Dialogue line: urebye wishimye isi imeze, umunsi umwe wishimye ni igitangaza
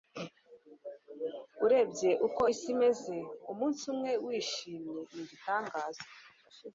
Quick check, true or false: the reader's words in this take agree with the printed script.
false